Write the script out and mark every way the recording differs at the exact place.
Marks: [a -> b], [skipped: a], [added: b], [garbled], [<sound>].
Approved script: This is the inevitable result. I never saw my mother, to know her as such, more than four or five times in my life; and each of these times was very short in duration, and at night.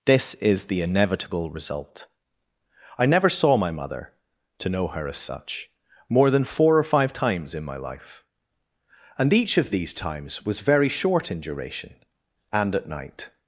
This is the inevitable result. I never saw my mother, to know her as such, more than four or five times in my life; and each of these times was very short in duration, and at night.